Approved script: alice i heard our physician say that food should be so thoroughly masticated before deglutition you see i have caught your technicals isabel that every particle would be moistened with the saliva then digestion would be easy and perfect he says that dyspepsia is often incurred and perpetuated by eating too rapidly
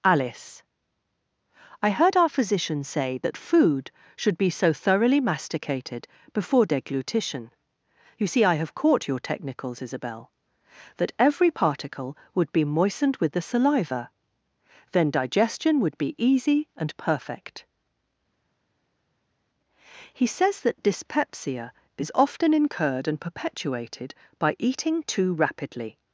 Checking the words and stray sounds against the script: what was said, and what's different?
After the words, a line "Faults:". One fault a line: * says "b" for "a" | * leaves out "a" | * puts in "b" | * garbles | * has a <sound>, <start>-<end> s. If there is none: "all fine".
alice i heard our physician say that food should be so thoroughly masticated before deglutition you see i have caught your technicals isabel that every particle would be moistened with the saliva then digestion would be easy and perfect he says that dyspepsia is often incurred and perpetuated by eating too rapidly
Faults:
all fine